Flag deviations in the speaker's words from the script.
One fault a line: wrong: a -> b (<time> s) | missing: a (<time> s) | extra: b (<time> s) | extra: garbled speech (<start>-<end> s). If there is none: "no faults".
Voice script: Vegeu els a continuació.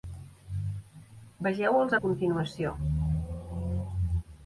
no faults